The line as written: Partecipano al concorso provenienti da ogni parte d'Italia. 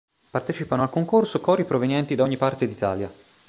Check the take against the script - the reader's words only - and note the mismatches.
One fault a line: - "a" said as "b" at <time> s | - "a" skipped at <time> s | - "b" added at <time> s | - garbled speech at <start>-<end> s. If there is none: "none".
- "cori" added at 1.4 s